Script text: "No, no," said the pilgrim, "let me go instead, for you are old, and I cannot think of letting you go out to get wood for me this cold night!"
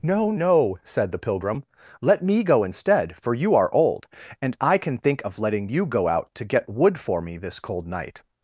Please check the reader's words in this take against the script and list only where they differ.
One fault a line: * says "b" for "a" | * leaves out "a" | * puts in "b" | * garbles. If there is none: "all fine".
* says "can" for "cannot"